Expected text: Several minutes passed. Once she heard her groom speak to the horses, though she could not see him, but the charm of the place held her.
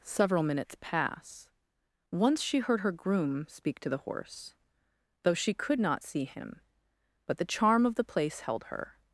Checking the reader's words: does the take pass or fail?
fail